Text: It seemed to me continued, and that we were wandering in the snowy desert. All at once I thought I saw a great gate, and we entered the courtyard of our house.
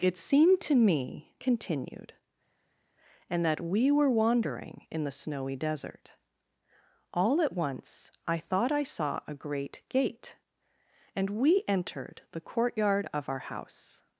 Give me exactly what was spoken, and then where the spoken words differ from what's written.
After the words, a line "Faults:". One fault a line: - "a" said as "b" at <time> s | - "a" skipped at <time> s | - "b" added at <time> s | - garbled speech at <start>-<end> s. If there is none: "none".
It seemed to me continued, and that we were wandering in the snowy desert. All at once I thought I saw a great gate, and we entered the courtyard of our house.
Faults:
none